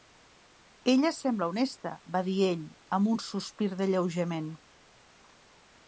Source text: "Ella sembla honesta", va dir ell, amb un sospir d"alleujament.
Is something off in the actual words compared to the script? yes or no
no